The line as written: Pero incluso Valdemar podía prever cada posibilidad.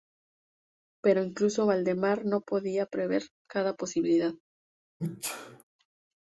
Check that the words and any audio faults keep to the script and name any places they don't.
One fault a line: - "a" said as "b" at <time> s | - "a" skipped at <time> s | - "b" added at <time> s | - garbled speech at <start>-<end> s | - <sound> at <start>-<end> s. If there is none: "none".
- "no" added at 2.2 s
- sneeze at 5.0-5.6 s